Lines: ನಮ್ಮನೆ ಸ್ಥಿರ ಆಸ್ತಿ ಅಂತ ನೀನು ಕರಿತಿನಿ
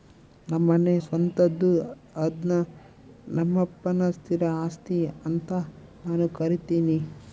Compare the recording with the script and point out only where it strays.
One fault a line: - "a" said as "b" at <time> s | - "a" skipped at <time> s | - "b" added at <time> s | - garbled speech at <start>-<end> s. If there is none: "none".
- "ಸ್ವಂತದ್ದು ಅದ್ನ ನಮ್ಮಪ್ಪನ" added at 1.0 s
- "ನೀನು" said as "ನಾನು" at 6.0 s